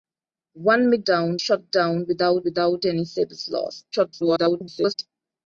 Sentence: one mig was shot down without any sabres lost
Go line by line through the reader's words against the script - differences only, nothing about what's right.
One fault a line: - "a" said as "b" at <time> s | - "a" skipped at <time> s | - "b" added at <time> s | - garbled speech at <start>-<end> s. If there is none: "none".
- "was" said as "down" at 1.1 s
- "without" added at 2.4 s
- garbled speech at 3.9-4.9 s